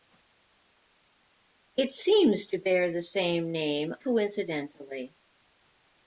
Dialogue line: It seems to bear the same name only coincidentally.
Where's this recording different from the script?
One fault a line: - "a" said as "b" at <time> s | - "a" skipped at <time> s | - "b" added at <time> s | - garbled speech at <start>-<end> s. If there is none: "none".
- "only" skipped at 4.0 s